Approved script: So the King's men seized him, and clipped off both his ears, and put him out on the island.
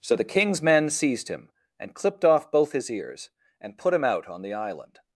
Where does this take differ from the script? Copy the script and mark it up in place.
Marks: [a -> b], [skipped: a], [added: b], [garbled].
So the King's men seized him, and clipped off both his ears, and put him out on the island.